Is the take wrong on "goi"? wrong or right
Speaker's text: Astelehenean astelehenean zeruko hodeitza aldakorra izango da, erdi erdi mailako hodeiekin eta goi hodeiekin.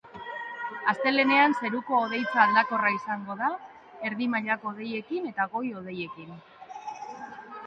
right